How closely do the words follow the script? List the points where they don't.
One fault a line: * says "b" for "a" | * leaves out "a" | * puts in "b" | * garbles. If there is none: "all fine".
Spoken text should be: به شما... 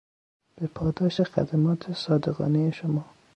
* puts in "پاداش خدمات صادقانهی"